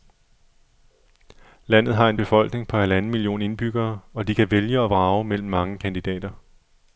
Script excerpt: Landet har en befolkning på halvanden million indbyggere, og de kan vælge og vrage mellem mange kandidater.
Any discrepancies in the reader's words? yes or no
no